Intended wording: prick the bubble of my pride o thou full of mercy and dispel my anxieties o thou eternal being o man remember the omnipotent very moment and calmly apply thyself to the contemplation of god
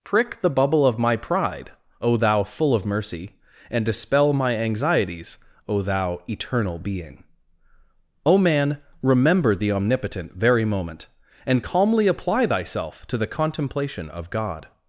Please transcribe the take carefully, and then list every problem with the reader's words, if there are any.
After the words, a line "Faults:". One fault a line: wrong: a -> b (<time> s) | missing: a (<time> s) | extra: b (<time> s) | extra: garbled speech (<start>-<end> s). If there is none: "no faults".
prick the bubble of my pride o thou full of mercy and dispel my anxieties o thou eternal being o man remember the omnipotent very moment and calmly apply thyself to the contemplation of god
Faults:
no faults